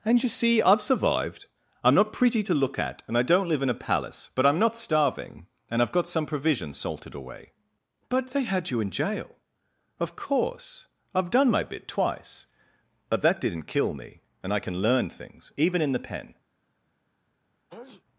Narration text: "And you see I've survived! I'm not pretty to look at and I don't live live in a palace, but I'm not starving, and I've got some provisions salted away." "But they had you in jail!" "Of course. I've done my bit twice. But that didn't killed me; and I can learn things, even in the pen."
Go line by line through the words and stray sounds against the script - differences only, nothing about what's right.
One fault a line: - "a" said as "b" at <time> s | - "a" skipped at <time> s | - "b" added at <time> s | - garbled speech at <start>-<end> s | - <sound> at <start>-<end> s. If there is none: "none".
- "live" skipped at 3.6 s
- "killed" said as "kill" at 13.7 s
- sneeze at 17.7-18.0 s